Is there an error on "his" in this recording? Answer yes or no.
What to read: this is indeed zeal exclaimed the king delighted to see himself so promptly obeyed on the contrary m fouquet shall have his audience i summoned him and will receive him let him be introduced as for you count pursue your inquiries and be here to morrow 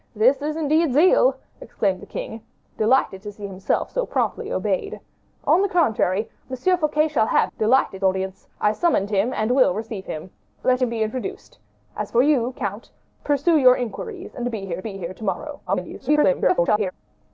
yes